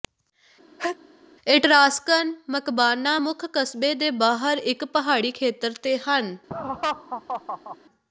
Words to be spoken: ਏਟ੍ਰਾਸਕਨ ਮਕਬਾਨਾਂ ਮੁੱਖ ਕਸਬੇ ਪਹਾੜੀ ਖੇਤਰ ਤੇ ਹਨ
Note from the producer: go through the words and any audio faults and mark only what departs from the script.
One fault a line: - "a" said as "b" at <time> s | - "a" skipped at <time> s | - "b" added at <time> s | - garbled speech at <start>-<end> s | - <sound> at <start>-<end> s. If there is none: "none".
- sneeze at 0.8-1.0 s
- "ਦੇ ਬਾਹਰ ਇੱਕ" added at 3.9 s
- laugh at 6.5-7.8 s